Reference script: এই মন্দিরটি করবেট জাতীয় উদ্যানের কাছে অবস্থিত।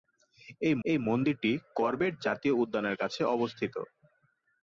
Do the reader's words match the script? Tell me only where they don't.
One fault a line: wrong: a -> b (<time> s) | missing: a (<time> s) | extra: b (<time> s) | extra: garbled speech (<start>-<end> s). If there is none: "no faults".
extra: এই (0.8 s)